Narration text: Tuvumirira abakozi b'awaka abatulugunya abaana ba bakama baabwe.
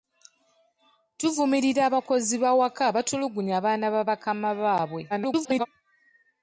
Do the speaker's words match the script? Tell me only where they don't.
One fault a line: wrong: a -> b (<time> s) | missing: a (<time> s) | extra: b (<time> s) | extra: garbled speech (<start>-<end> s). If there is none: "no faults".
extra: garbled speech (5.1-5.7 s)